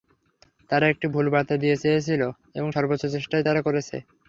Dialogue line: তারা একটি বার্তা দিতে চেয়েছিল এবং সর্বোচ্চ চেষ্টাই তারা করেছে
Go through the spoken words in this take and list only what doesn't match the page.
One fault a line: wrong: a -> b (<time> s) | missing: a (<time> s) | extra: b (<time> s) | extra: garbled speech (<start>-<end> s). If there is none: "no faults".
extra: ভুল (1.1 s)